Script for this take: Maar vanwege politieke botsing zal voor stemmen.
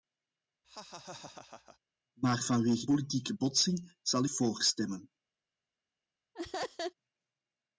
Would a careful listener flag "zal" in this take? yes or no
no